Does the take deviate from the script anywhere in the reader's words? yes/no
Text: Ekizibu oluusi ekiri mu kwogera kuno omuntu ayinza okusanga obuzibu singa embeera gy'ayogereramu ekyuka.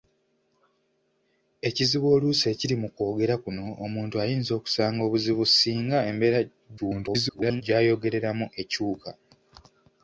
yes